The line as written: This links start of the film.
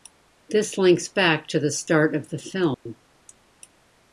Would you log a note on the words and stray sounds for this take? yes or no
yes